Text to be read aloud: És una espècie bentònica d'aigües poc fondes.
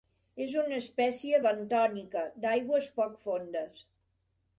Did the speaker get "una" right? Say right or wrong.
right